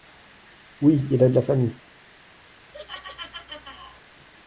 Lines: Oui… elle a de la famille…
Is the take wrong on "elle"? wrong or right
wrong